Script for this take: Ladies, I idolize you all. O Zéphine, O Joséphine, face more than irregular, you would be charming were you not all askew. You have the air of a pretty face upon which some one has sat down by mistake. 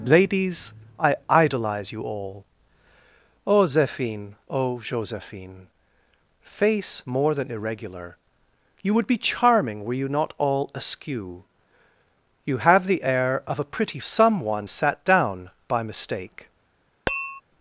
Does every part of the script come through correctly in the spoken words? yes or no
no